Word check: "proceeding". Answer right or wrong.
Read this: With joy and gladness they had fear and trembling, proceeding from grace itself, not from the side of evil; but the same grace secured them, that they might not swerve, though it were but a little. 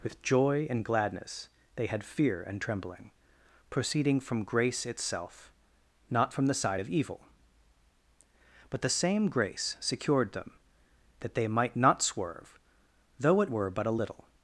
right